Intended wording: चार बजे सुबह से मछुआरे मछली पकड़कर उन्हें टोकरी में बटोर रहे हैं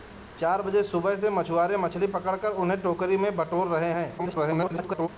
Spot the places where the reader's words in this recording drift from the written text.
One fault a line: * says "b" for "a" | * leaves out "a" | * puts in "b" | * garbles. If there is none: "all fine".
* garbles